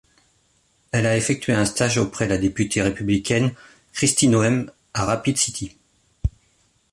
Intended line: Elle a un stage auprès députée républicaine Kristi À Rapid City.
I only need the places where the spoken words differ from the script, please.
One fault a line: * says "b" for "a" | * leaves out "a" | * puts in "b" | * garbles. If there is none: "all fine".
* puts in "effectué"
* puts in "la"
* puts in "Noem"